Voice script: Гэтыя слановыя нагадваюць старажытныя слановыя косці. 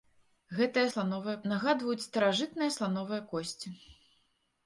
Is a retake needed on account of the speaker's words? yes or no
no